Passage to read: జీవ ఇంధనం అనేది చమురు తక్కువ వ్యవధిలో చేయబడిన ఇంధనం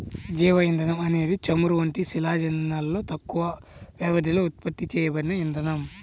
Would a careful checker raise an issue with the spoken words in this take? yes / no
yes